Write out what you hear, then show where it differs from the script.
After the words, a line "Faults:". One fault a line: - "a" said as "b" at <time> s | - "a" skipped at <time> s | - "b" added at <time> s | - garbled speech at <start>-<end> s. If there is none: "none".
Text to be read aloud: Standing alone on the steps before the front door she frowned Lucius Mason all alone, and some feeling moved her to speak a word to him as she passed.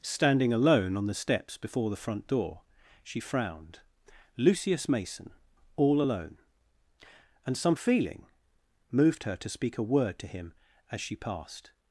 Standing alone on the steps before the front door she frowned Lucius Mason all alone, and some feeling moved her to speak a word to him as she passed.
Faults:
none